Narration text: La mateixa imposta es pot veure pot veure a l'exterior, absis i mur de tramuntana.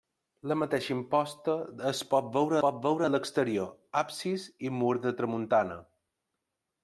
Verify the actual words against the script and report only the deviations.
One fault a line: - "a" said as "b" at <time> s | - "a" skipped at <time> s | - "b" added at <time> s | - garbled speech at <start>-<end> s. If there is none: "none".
none